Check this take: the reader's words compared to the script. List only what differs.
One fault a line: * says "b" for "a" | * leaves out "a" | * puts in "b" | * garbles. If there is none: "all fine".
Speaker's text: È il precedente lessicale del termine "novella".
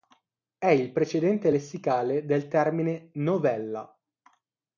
all fine